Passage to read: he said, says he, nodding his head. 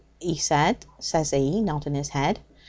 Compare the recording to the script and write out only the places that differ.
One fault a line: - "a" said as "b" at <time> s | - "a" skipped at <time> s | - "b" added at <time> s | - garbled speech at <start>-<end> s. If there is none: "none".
none